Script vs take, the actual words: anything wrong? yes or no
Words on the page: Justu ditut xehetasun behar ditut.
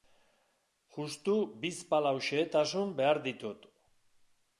yes